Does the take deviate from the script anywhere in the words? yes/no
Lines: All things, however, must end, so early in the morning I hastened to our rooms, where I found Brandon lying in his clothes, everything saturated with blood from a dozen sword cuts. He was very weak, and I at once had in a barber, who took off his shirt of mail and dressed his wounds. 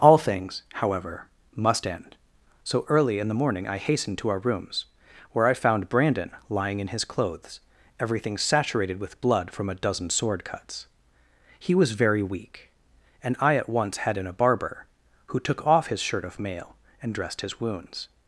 no